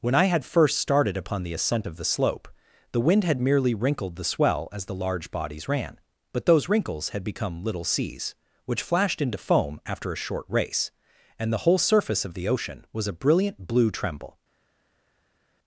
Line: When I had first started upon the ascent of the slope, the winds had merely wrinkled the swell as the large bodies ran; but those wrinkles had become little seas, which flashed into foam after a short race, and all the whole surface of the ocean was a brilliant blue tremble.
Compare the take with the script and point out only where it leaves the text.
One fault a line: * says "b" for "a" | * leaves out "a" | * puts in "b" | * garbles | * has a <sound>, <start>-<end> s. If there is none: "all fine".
* says "wind" for "winds"
* leaves out "all"